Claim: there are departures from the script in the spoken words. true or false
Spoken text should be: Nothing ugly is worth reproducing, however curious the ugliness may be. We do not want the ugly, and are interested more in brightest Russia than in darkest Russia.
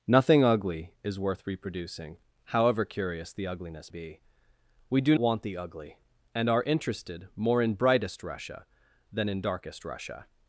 true